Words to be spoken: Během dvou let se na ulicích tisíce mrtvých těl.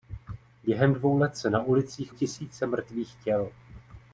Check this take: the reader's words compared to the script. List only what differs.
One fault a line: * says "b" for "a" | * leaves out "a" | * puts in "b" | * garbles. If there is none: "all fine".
all fine